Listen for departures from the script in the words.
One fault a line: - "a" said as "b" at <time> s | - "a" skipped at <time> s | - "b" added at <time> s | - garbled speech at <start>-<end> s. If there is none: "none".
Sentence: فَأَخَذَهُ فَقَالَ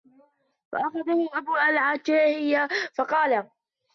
- "أَبُو الْعَتَاهِيَةِ" added at 1.3 s